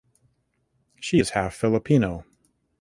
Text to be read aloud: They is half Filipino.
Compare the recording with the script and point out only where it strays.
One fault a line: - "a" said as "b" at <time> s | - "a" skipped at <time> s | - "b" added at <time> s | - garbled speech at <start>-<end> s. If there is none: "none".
- "They" said as "She" at 1.0 s